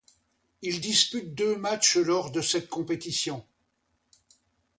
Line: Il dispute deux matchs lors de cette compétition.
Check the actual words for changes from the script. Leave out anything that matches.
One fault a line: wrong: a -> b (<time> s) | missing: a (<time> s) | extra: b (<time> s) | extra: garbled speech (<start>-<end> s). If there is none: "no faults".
no faults